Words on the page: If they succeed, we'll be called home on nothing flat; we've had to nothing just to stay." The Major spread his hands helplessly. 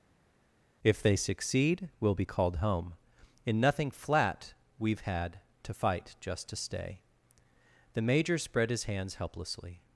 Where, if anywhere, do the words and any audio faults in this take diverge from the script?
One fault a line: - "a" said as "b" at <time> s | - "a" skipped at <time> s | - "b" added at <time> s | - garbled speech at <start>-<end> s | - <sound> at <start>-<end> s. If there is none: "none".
- "on" said as "in" at 3.5 s
- "nothing" said as "fight" at 5.7 s